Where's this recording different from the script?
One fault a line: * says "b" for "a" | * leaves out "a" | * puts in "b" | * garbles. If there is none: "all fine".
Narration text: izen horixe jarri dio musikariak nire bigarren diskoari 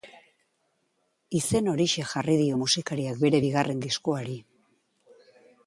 * says "bere" for "nire"